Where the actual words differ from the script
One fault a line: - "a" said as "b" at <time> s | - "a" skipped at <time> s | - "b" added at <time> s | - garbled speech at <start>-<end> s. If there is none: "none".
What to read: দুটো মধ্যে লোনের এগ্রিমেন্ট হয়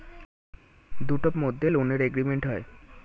none